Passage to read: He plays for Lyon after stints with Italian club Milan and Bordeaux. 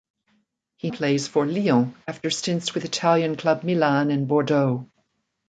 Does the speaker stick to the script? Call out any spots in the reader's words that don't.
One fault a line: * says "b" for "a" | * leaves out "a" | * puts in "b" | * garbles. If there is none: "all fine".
all fine